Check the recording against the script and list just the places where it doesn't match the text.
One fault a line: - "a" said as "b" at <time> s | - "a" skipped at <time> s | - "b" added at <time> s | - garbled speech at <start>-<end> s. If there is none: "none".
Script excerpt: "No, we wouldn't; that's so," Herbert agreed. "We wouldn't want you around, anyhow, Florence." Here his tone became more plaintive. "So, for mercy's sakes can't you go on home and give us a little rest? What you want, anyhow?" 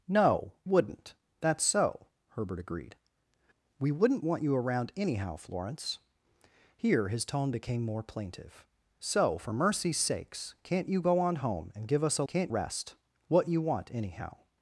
- "we" skipped at 0.5 s
- "little" said as "can't" at 12.3 s